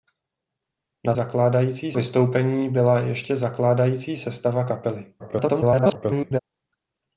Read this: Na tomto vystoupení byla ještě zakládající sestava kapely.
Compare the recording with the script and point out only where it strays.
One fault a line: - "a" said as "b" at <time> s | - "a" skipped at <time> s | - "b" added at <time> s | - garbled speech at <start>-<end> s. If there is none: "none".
- "tomto" said as "zakládající" at 1.1 s
- garbled speech at 5.2-6.4 s